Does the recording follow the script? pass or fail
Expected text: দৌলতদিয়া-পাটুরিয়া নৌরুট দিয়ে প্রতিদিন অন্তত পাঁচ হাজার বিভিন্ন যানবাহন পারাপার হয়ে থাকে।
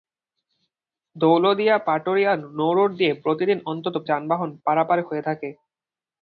fail